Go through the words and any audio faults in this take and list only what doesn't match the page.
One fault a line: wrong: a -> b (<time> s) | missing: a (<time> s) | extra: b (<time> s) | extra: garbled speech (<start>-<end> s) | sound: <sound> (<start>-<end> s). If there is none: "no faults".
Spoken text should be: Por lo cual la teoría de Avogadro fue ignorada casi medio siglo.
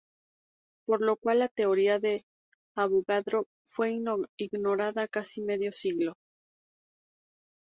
no faults